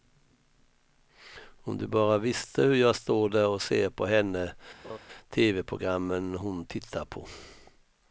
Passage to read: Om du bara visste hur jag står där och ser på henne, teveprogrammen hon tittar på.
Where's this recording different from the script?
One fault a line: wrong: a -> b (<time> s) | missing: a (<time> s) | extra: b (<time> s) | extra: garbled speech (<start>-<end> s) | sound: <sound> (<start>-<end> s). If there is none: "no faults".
sound: laugh (4.8-5.0 s)